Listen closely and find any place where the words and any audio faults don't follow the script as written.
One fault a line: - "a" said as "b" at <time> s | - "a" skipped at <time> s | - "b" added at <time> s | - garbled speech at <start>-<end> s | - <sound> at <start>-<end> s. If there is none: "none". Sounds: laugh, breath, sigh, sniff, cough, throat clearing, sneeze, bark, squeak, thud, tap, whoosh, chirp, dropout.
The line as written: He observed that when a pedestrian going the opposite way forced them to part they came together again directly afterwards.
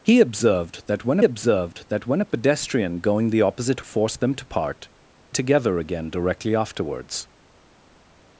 - "observed that when" added at 1.2 s
- "way" skipped at 3.8 s
- "they came" skipped at 4.9 s